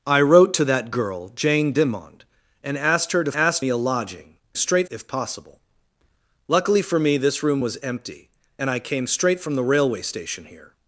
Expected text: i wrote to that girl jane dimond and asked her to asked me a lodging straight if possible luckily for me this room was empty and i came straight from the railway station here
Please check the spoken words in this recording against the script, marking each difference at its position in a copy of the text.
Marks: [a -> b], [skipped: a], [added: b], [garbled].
i wrote to that girl jane dimond and asked her to asked me a lodging straight if possible luckily for me this room was empty and i came straight from the railway station here